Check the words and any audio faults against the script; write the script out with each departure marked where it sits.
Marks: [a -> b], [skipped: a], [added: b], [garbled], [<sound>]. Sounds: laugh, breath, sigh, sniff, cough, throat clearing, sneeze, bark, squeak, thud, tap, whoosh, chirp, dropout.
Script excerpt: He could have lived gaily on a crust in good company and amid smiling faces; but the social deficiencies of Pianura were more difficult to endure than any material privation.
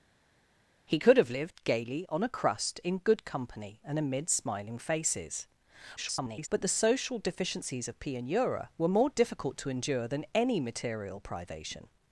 He could have lived gaily on a crust in good company and amid smiling faces; [garbled] but the social deficiencies of Pianura were more difficult to endure than any material privation.